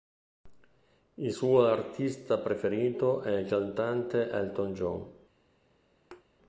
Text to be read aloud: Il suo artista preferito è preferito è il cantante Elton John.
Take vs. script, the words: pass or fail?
fail